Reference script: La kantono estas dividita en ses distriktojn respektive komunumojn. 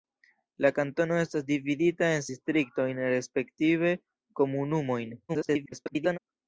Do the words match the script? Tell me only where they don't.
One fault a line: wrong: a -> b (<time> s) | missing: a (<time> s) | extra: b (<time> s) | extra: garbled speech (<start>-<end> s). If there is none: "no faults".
missing: ses (2.2 s)
extra: garbled speech (5.3-6.2 s)